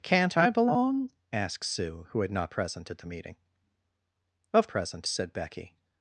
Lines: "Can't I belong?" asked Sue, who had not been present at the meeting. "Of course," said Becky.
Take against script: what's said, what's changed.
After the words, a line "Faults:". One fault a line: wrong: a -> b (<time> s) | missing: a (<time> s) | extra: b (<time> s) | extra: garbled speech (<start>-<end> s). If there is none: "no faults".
"Can't I belong?" asked Sue, who had not present at the meeting. "Of present," said Becky.
Faults:
missing: been (2.5 s)
wrong: course -> present (4.7 s)